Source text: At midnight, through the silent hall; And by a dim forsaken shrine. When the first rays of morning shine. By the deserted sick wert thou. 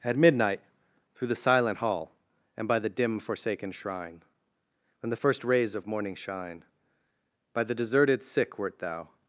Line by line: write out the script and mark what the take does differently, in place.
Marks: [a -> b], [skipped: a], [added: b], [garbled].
At midnight, through the silent hall; And by [a -> the] dim forsaken shrine. When the first rays of morning shine. By the deserted sick wert thou.